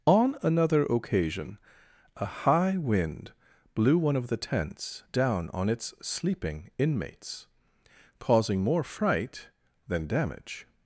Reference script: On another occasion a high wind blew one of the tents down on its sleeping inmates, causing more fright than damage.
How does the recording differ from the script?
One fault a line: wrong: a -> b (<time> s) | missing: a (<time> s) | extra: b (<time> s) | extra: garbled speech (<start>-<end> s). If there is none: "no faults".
no faults